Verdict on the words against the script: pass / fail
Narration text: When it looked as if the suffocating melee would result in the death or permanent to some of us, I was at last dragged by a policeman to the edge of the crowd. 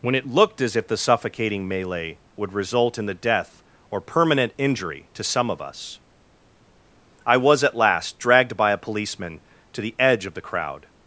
fail